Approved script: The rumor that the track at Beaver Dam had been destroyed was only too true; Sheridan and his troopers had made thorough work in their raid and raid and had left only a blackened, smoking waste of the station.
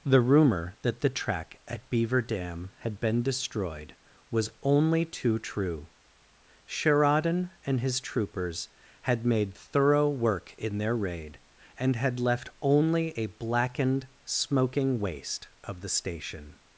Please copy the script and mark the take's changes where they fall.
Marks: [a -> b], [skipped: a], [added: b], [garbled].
The rumor that the track at Beaver Dam had been destroyed was only too true; Sheridan and his troopers had made thorough work in their raid and [skipped: raid and] had left only a blackened, smoking waste of the station.